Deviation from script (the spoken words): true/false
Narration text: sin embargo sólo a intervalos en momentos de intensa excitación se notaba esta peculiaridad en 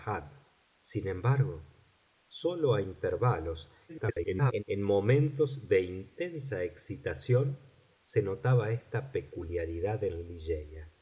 true